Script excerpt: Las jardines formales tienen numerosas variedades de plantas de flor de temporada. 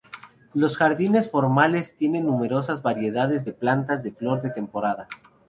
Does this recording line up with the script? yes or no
no